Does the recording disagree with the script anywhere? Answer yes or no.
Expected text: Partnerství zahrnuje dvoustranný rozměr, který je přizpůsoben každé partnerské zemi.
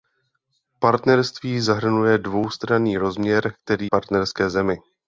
yes